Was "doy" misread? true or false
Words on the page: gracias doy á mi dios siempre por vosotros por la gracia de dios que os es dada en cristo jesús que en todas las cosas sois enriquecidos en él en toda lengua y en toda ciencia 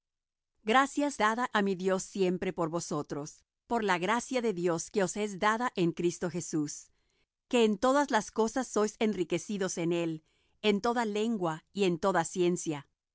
true